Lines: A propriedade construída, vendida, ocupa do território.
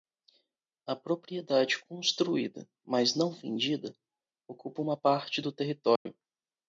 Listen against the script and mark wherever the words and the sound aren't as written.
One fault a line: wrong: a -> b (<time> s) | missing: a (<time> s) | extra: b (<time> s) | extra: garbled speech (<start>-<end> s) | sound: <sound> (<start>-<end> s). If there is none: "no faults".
extra: mas não (2.8 s)
extra: uma parte (4.8 s)
sound: dropout (6.0-6.1 s)